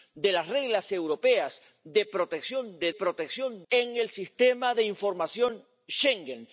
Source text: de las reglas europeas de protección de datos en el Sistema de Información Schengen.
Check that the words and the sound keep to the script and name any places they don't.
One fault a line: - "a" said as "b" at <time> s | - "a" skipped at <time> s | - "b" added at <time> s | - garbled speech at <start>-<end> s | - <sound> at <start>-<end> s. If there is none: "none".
- "datos" said as "protección" at 2.9 s